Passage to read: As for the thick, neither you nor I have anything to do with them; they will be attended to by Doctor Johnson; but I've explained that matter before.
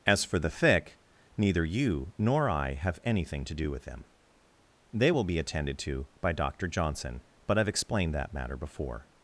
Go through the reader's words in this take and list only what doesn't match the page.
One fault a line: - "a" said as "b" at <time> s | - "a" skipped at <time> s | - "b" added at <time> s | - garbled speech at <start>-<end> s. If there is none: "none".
none